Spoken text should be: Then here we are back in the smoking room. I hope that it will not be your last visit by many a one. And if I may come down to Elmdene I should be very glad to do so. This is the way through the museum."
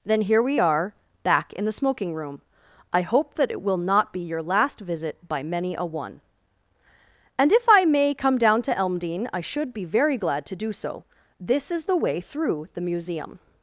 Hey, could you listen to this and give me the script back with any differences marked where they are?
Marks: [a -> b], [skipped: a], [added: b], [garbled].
Then here we are back in the smoking room. I hope that it will not be your last visit by many a one. And if I may come down to Elmdene I should be very glad to do so. This is the way through the museum."